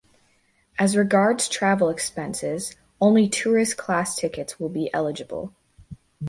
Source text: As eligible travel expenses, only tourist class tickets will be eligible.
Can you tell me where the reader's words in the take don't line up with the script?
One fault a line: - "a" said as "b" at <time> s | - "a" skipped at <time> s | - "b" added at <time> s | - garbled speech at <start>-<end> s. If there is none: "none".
- "eligible" said as "regards" at 1.0 s